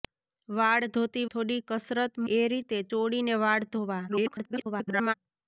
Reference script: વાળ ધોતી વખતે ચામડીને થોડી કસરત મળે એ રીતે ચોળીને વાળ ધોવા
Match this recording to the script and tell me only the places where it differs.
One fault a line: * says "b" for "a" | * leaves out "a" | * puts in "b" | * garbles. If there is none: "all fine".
* leaves out "વખતે ચામડીને"
* leaves out "મળે"
* garbles